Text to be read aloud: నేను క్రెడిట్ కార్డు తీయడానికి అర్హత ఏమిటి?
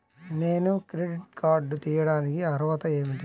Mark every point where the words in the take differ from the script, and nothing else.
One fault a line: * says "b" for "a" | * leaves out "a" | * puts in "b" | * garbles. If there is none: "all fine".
all fine